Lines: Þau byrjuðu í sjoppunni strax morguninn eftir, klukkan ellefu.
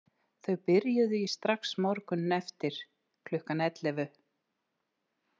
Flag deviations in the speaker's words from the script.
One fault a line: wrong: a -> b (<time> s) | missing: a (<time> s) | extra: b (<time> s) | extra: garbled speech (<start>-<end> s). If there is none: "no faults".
missing: sjoppunni (1.3 s)